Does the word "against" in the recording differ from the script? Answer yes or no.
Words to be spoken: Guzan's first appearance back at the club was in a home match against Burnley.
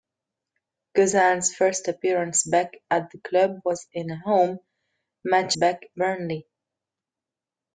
yes